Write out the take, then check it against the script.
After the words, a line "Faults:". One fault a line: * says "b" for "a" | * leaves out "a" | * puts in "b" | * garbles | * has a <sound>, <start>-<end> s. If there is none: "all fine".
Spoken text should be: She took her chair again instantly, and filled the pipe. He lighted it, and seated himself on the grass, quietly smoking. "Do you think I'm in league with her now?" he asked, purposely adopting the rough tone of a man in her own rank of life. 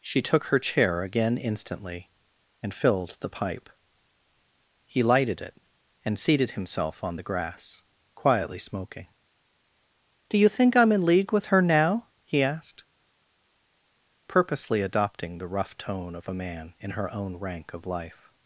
She took her chair again instantly, and filled the pipe. He lighted it, and seated himself on the grass, quietly smoking. "Do you think I'm in league with her now?" he asked, purposely adopting the rough tone of a man in her own rank of life.
Faults:
all fine